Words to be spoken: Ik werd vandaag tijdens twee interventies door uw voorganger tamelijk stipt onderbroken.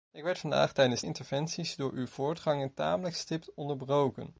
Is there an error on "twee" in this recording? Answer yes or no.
yes